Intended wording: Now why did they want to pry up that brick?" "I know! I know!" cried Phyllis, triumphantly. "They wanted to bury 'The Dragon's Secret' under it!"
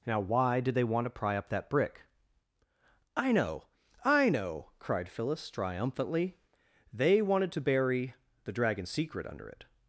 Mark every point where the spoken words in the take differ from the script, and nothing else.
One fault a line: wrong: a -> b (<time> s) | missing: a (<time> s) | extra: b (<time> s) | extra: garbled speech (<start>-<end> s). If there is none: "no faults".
no faults